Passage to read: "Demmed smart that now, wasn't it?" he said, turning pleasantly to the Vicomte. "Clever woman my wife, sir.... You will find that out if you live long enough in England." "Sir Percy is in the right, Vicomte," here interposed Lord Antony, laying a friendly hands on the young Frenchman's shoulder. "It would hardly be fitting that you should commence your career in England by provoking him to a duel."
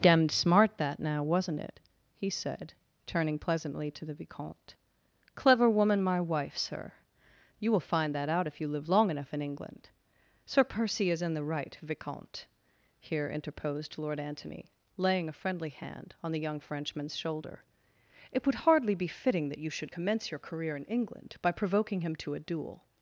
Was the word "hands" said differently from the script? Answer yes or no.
yes